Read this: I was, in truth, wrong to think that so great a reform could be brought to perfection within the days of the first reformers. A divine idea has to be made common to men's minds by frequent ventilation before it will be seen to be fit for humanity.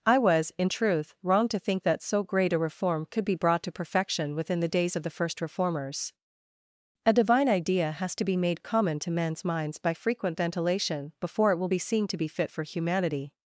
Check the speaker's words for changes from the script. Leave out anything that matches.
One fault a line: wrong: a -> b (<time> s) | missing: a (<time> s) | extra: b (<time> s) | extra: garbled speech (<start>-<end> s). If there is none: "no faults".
no faults